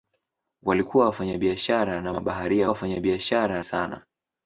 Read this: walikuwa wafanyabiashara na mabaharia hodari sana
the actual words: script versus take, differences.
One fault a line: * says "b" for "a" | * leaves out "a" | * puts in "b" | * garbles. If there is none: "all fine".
* says "wafanyabiashara" for "hodari"